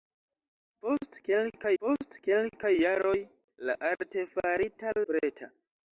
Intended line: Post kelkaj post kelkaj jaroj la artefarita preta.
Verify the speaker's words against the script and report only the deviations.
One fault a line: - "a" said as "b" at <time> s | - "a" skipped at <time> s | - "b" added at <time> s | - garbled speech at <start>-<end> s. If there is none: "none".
none